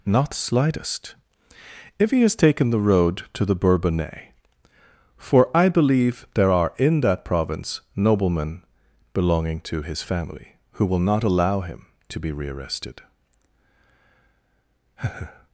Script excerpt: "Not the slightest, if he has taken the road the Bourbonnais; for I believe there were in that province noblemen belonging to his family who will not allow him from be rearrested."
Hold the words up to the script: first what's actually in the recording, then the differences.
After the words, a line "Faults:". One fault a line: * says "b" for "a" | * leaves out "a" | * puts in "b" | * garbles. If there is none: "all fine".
"Not the slightest, if he has taken the road to the Bourbonnais; for I believe there are in that province noblemen belonging to his family who will not allow him to be rearrested."
Faults:
* puts in "to"
* says "are" for "were"
* says "to" for "from"